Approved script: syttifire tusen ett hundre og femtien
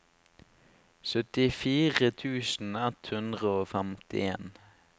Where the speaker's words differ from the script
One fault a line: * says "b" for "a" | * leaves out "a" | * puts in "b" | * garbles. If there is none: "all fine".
all fine